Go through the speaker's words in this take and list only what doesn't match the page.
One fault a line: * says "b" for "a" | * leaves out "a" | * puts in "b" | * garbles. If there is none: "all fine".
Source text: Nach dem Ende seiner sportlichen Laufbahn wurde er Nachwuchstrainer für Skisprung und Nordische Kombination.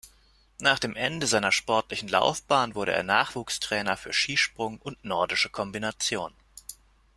all fine